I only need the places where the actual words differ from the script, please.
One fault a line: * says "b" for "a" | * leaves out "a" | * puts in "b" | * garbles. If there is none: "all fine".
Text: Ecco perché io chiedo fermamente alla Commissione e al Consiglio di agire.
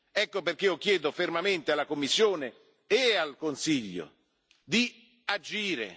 all fine